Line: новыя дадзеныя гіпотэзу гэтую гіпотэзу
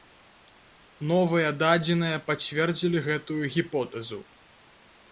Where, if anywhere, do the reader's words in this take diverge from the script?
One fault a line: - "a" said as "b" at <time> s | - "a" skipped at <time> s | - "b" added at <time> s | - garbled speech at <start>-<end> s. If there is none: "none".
- "гіпотэзу" said as "пацвердзілі" at 2.3 s